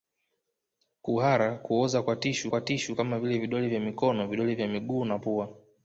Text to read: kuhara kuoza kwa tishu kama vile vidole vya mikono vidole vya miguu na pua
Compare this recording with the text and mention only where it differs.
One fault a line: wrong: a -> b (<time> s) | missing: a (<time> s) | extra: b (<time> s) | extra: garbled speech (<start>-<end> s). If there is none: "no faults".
extra: kwa tishu (2.5 s)